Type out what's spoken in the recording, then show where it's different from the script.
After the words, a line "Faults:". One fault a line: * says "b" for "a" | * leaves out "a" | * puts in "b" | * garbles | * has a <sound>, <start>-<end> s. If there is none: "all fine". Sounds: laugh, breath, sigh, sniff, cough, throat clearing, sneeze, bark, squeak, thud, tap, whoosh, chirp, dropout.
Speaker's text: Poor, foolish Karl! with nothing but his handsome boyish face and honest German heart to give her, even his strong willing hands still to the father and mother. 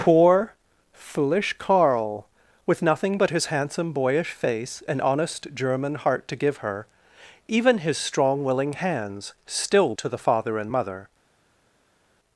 Poor, foolish Karl! with nothing but his handsome boyish face and honest German heart to give her, even his strong willing hands still to the father and mother.
Faults:
all fine